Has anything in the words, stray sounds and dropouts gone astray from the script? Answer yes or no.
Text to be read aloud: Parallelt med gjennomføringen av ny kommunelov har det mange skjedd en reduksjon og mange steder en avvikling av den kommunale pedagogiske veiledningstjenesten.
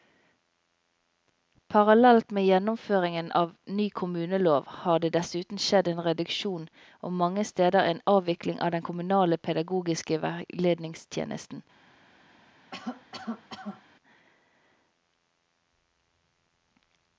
yes